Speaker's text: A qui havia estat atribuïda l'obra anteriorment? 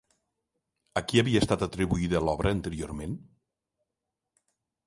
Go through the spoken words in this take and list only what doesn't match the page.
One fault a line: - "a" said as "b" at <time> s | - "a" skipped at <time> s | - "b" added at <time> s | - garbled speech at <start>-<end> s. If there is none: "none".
none